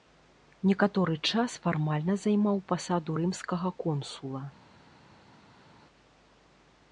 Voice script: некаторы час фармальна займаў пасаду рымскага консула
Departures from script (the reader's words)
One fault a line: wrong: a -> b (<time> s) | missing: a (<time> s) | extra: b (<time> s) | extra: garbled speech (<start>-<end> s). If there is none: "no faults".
no faults